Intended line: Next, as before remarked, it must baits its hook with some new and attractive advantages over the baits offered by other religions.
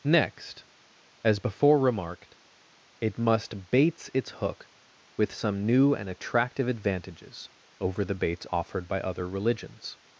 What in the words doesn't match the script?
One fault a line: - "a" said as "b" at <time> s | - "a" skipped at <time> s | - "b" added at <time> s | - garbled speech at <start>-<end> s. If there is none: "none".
none